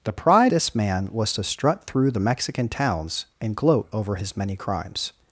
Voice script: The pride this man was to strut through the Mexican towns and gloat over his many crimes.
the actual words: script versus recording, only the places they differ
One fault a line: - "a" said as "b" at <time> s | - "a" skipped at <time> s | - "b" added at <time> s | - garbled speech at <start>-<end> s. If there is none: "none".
none